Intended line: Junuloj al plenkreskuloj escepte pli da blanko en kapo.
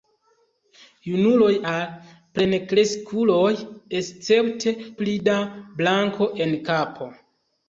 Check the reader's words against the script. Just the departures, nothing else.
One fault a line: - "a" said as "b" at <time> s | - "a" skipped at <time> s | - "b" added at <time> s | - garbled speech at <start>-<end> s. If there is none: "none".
none